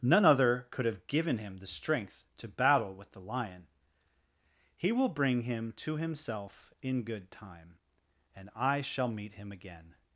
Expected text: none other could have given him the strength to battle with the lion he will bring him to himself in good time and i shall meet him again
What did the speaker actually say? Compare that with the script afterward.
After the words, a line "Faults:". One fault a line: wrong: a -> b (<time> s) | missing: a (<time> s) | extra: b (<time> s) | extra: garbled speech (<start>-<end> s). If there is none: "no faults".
none other could have given him the strength to battle with the lion he will bring him to himself in good time and i shall meet him again
Faults:
no faults